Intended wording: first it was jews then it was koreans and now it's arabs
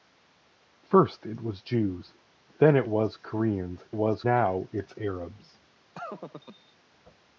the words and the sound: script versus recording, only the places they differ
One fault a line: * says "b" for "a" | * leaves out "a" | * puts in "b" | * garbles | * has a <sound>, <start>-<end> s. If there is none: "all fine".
* says "was" for "and"
* has a laugh, 5.9-6.8 s